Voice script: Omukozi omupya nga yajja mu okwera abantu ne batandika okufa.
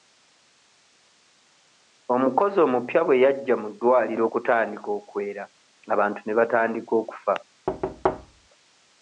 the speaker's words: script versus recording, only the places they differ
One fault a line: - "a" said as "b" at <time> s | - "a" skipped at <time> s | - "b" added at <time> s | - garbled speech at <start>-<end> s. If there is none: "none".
- "nga" said as "bwe" at 3.0 s
- "ddwaliro okutandika" added at 3.7 s